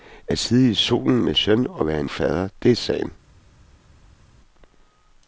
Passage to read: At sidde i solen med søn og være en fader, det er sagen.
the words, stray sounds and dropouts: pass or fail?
pass